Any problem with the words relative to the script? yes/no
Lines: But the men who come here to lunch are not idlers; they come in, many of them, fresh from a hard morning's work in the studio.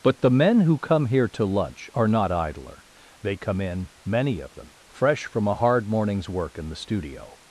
yes